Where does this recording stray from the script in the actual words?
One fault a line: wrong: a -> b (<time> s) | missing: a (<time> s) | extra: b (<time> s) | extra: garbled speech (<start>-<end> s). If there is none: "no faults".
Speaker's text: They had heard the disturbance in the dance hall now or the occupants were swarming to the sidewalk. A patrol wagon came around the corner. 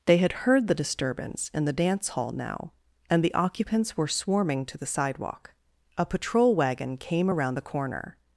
wrong: or -> and (3.1 s)